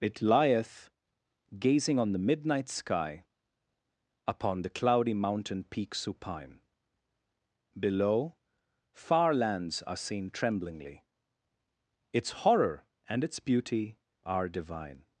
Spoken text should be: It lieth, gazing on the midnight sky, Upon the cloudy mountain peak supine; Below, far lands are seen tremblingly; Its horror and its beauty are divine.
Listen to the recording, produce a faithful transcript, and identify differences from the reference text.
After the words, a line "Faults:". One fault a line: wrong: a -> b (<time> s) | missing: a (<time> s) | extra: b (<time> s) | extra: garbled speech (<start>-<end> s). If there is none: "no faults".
It lieth, gazing on the midnight sky, Upon the cloudy mountain peak supine; Below, far lands are seen tremblingly; Its horror and its beauty are divine.
Faults:
no faults